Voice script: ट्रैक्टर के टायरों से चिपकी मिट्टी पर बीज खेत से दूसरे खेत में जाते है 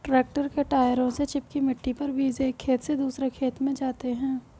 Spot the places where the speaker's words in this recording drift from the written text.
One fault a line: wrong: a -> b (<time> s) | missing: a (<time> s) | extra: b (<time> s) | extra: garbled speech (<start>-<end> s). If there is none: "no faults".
extra: एक (2.4 s)